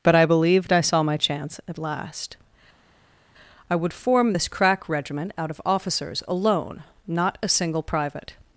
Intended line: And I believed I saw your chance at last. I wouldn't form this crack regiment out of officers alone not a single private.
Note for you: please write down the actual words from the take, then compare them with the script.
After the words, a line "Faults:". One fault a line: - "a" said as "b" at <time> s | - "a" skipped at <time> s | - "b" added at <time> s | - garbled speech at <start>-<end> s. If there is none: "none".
But I believed I saw my chance at last. I would form this crack regiment out of officers alone not a single private.
Faults:
- "And" said as "But" at 0.0 s
- "your" said as "my" at 1.0 s
- "wouldn't" said as "would" at 3.8 s